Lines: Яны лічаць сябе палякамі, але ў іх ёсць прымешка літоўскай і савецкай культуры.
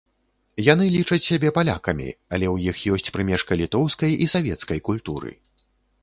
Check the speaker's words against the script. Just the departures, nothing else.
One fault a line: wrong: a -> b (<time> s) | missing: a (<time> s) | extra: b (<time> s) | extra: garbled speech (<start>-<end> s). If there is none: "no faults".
no faults